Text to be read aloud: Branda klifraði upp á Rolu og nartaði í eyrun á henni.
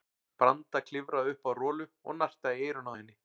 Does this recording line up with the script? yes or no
yes